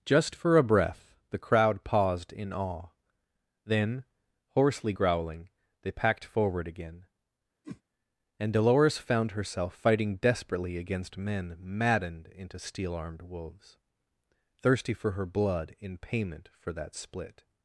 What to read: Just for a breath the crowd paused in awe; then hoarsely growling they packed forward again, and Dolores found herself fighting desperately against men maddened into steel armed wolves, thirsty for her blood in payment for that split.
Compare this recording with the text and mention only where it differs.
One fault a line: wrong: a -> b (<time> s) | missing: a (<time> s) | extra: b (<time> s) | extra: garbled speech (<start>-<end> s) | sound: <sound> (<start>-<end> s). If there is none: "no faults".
sound: whoosh (7.6-7.8 s)